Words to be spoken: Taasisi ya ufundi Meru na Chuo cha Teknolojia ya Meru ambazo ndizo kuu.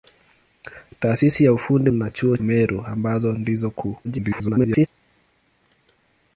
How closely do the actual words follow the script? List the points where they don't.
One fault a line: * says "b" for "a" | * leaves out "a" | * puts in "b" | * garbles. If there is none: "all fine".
* leaves out "Meru"
* leaves out "cha Teknolojia ya"
* garbles